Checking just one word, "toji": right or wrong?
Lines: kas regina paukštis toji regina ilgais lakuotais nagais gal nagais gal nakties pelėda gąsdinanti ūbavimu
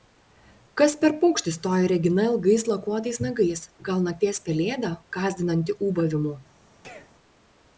right